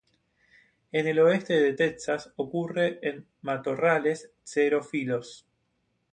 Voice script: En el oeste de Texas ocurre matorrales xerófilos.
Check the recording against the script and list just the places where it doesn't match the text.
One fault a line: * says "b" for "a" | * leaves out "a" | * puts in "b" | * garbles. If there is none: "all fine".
* puts in "en"